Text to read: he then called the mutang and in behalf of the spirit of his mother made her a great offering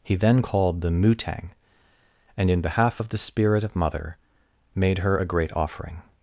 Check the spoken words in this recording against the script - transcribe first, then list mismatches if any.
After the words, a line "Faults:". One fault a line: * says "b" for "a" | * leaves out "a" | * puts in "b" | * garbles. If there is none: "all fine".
he then called the mutang and in behalf of the spirit of mother made her a great offering
Faults:
* leaves out "his"